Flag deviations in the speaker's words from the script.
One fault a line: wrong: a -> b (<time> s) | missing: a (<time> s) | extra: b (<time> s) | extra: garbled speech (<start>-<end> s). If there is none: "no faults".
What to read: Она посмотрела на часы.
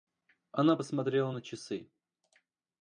no faults